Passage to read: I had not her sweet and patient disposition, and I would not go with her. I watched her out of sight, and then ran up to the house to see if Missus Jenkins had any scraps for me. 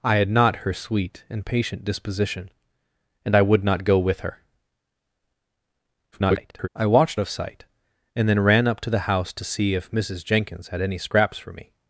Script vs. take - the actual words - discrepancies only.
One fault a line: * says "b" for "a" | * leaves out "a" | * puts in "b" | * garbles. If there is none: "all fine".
* garbles
* leaves out "her out"